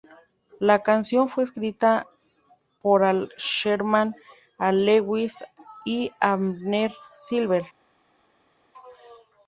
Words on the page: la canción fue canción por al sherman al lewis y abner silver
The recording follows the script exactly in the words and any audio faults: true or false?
false